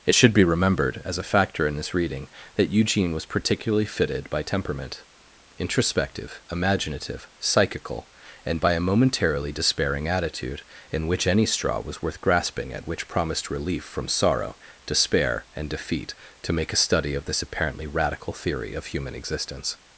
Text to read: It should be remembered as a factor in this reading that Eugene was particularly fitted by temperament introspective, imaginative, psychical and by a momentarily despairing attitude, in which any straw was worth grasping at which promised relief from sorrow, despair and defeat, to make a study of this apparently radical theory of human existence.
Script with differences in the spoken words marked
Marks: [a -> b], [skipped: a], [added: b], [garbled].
It should be remembered as a factor in this reading that Eugene was particularly fitted by temperament introspective, imaginative, psychical and by a momentarily despairing attitude, in which any straw was worth grasping at which promised relief from sorrow, despair and defeat, to make a study of this apparently radical theory of human existence.